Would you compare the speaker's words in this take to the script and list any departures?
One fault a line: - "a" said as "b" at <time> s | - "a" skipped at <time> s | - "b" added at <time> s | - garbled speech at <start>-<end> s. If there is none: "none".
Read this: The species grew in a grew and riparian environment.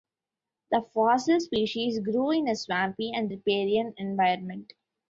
- "fossil" added at 0.8 s
- "grew" said as "swampy" at 2.5 s